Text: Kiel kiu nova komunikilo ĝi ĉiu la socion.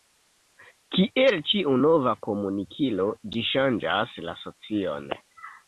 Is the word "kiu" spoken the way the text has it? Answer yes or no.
no